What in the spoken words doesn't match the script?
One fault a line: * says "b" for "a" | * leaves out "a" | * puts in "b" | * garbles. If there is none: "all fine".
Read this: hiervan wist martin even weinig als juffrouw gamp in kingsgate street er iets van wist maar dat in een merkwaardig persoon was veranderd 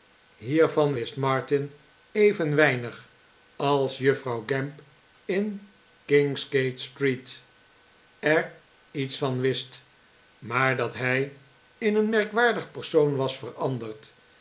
* puts in "hij"